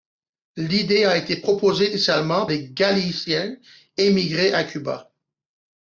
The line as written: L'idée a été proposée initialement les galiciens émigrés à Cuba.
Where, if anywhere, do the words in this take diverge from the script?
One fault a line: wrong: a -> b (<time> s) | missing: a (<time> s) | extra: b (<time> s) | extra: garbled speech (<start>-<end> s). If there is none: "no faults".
no faults